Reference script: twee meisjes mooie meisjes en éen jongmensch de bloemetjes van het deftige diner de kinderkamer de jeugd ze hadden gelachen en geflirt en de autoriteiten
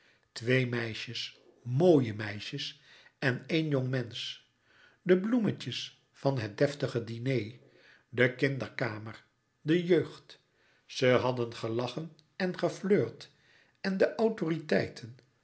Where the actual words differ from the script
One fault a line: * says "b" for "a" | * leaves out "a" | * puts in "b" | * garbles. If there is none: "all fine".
all fine